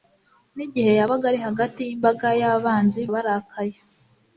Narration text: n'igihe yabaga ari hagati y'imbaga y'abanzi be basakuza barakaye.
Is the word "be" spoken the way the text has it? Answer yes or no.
no